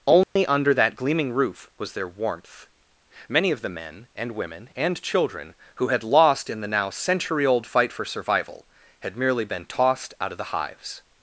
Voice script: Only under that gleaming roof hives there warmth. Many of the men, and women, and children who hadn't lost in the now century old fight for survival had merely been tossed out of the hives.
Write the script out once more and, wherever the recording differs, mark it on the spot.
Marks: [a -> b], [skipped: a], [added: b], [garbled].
Only under that gleaming roof [hives -> was] there warmth. Many of the men, and women, and children who [hadn't -> had] lost in the now century old fight for survival had merely been tossed out of the hives.